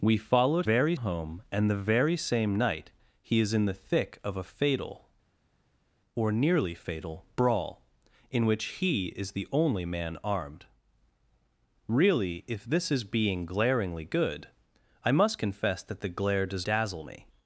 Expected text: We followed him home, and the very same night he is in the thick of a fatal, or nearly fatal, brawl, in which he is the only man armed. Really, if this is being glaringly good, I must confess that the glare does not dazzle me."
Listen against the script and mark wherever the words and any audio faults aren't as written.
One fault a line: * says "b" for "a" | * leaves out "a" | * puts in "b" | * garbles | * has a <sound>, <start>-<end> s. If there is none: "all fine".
* says "very" for "him"
* leaves out "not"